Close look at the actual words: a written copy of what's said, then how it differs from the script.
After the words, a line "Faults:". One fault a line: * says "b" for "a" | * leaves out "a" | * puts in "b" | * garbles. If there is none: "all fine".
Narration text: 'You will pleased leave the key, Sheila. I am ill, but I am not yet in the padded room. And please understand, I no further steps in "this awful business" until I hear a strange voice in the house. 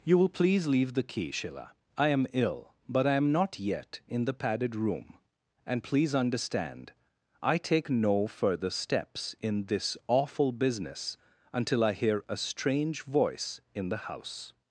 'You will please leave the key, Sheila. I am ill, but I am not yet in the padded room. And please understand, I take no further steps in "this awful business" until I hear a strange voice in the house.
Faults:
* says "please" for "pleased"
* puts in "take"